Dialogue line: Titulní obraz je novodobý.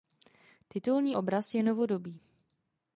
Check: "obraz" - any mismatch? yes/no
no